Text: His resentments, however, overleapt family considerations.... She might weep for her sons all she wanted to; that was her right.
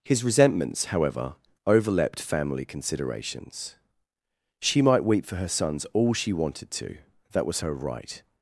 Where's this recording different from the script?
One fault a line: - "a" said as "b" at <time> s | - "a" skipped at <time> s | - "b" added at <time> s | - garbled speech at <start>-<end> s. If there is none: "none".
none